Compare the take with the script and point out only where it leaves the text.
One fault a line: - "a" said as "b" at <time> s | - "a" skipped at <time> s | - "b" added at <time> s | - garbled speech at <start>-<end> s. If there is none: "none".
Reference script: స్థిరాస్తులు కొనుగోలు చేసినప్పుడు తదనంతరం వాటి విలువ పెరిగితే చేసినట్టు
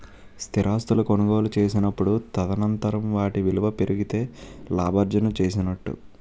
- "లాభార్జన" added at 4.7 s